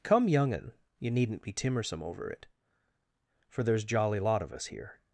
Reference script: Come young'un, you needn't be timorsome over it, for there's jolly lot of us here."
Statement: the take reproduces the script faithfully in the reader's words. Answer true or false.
true